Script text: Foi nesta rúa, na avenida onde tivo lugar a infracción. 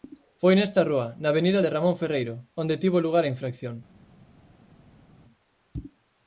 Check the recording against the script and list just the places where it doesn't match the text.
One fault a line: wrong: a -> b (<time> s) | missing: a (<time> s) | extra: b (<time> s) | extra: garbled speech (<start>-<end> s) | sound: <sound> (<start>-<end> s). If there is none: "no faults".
extra: de Ramón Ferreiro (1.6 s)